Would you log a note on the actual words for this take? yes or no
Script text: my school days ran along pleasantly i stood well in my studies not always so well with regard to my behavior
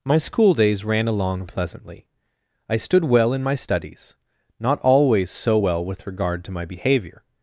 no